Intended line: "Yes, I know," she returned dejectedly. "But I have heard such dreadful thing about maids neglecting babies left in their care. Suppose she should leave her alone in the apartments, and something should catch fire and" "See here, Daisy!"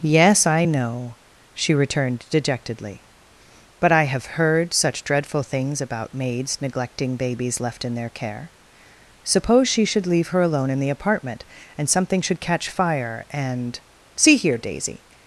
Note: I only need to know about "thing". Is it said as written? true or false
false